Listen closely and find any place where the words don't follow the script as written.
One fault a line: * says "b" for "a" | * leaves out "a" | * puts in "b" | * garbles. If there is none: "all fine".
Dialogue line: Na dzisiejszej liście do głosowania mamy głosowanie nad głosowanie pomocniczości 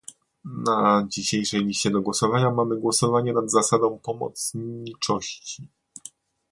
* says "zasadą" for "głosowanie"